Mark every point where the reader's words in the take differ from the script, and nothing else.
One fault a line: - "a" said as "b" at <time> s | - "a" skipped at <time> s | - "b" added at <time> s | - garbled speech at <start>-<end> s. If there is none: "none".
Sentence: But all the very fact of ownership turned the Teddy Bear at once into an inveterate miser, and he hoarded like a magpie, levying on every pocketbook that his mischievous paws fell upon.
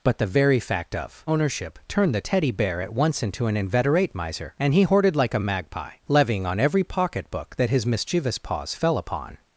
- "all" skipped at 0.2 s